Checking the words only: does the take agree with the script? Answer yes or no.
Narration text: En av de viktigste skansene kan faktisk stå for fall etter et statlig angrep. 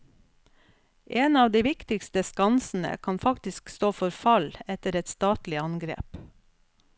yes